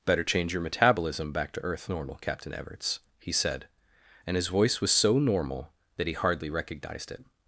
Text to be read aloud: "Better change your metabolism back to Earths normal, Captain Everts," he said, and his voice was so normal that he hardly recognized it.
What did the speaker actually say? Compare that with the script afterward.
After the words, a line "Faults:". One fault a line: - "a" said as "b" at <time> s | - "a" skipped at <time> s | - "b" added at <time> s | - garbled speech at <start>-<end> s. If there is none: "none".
"Better change your metabolism back to Earth normal, Captain Everts," he said, and his voice was so normal that he hardly recognized it.
Faults:
- "Earths" said as "Earth" at 1.6 s